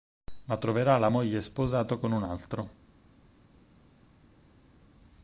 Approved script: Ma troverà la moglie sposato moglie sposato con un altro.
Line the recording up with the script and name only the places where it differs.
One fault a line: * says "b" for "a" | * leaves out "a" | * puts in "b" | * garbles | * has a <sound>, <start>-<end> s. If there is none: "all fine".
* leaves out "moglie sposato"